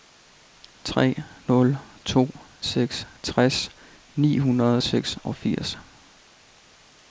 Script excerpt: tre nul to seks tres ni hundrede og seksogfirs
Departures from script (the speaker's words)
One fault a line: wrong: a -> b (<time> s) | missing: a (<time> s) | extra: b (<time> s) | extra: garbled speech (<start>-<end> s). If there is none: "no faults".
no faults